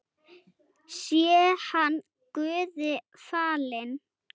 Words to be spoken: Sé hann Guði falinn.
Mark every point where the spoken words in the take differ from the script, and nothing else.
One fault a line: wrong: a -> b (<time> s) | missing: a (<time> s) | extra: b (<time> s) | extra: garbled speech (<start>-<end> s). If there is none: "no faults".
no faults